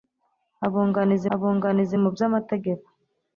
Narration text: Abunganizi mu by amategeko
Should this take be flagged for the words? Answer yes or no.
yes